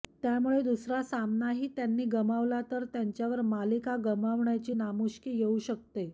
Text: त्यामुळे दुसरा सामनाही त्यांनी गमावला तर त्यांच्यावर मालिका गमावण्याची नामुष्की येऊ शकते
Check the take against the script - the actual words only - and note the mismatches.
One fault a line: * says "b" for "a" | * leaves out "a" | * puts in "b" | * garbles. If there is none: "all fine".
all fine